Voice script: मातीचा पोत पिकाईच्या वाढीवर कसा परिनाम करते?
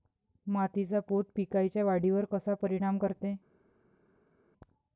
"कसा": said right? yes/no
yes